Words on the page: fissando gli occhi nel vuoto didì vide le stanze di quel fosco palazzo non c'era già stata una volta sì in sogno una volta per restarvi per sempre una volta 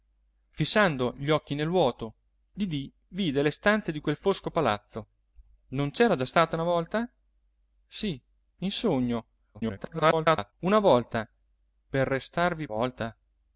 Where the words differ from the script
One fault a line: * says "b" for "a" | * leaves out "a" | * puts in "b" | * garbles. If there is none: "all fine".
* garbles
* leaves out "per sempre una"